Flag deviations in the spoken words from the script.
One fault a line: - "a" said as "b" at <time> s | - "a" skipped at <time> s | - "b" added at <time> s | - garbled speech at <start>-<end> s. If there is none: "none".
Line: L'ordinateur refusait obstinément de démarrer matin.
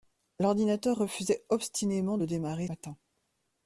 none